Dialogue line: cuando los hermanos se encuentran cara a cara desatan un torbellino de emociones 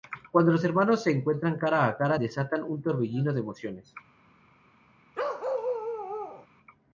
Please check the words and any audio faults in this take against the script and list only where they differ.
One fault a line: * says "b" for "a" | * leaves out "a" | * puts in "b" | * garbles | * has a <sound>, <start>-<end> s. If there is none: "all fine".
* has a bark, 5.1-6.5 s